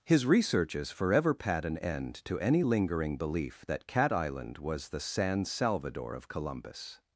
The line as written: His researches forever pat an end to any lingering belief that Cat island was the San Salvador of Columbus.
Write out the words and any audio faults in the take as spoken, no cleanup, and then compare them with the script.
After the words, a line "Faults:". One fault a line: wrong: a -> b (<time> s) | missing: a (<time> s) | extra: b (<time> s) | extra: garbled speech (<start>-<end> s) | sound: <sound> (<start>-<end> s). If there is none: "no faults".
His researches forever pat an end to any lingering belief that Cat island was the San Salvador of Columbus.
Faults:
no faults